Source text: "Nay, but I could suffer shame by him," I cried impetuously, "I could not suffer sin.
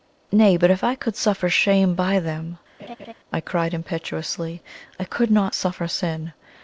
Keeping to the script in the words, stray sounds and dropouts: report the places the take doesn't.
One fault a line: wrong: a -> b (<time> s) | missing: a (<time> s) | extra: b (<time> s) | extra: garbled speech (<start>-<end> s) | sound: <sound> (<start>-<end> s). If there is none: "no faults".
extra: if (0.7 s)
wrong: him -> them (2.2 s)
sound: laugh (2.8-3.1 s)